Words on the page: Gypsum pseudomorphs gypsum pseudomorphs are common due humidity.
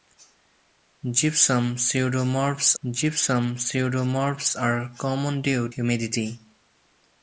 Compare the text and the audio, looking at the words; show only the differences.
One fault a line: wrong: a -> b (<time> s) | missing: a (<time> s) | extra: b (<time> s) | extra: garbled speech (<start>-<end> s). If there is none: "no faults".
no faults